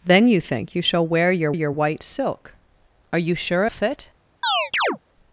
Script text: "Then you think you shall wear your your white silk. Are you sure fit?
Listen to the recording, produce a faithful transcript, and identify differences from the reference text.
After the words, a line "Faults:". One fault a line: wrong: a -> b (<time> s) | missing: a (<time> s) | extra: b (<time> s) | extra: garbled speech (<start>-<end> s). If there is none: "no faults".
"Then you think you shall wear your your white silk. Are you sure fit?
Faults:
no faults